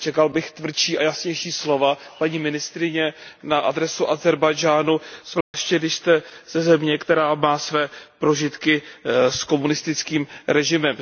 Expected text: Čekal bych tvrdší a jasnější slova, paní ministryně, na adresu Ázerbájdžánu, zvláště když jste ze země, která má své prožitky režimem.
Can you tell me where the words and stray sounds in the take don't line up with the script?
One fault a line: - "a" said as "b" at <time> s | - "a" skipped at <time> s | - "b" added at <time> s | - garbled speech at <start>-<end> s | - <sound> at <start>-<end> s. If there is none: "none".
- dropout at 5.4-5.5 s
- "s komunistickým" added at 9.3 s